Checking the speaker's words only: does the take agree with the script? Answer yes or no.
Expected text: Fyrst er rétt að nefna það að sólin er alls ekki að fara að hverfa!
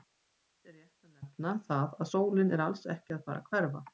yes